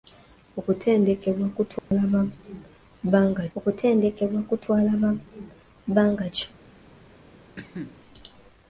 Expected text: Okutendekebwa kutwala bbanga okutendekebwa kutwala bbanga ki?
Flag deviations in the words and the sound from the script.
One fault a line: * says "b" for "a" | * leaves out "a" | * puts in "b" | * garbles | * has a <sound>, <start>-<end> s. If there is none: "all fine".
* has a dropout, 1.8-1.9 s
* has a cough, 7.6-8.0 s